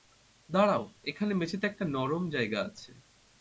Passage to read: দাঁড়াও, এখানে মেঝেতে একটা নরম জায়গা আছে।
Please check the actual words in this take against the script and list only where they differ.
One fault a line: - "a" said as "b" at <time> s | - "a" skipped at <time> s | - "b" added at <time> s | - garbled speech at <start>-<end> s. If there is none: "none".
none